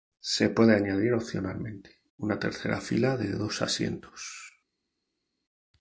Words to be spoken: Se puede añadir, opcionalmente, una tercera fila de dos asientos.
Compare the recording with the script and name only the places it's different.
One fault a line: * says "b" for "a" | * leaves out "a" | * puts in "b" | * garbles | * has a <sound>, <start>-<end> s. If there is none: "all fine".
all fine